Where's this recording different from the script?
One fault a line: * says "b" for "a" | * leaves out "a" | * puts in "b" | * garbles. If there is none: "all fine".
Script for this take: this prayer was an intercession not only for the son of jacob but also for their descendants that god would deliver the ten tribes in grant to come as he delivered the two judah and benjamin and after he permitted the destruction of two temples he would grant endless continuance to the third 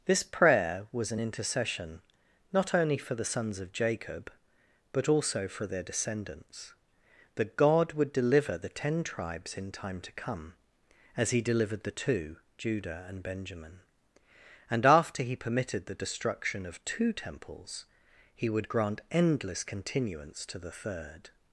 * says "sons" for "son"
* says "time" for "grant"